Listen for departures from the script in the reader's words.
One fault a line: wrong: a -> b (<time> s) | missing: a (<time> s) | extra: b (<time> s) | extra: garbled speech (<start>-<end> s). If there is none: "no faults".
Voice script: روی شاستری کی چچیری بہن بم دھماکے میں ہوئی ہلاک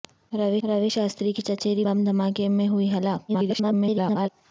extra: روی (0.6 s)
missing: بہن (1.8 s)
extra: garbled speech (3.3-4.3 s)